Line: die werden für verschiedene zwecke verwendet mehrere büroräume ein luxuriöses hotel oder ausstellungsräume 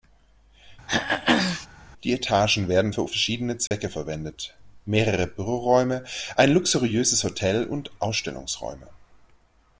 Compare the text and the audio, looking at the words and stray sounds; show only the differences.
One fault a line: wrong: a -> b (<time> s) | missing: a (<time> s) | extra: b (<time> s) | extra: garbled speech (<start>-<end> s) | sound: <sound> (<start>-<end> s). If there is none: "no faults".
sound: throat clearing (0.9-1.7 s)
extra: etagen (2.1 s)
sound: dropout (3.7-3.7 s)
wrong: oder -> und (7.6 s)